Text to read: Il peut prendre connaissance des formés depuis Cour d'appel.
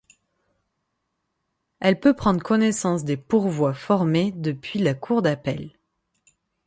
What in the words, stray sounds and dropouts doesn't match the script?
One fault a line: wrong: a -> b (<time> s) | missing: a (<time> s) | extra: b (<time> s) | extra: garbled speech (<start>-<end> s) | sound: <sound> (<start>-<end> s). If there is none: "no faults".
wrong: Il -> Elle (1.8 s)
extra: pourvois (3.2 s)
extra: la (4.8 s)